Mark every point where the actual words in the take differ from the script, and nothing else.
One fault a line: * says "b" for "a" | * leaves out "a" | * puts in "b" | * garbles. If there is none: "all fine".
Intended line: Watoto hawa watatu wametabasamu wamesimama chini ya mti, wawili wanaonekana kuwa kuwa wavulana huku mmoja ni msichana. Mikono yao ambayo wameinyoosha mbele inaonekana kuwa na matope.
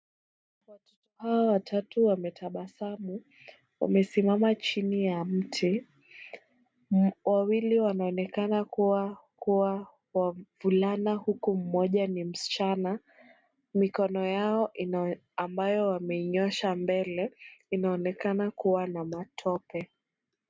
all fine